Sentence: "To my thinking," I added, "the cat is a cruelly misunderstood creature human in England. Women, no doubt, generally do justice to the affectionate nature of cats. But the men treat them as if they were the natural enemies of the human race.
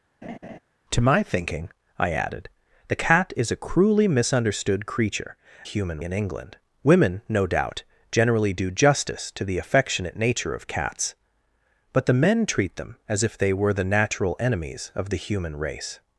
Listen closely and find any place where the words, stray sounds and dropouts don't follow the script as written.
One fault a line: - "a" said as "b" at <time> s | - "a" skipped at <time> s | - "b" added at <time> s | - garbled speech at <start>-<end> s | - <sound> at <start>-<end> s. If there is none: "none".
- laugh at 0.2-0.6 s